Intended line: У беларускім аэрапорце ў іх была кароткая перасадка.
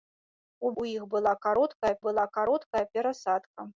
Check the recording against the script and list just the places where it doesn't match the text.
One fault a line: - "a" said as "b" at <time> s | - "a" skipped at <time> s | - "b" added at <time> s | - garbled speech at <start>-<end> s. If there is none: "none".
- "беларускім аэрапорце ў іх" said as "ў іх была кароткая" at 0.8 s